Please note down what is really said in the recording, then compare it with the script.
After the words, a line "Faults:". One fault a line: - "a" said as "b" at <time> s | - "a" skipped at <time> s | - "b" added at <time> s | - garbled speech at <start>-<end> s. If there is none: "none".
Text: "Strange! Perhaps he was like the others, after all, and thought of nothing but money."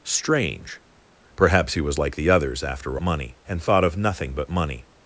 "Strange! Perhaps he was like the others, after money, and thought of nothing but money."
Faults:
- "all" said as "money" at 3.0 s